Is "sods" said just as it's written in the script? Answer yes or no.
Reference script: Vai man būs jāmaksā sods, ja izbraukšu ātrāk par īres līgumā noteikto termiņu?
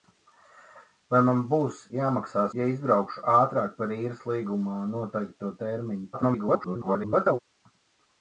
no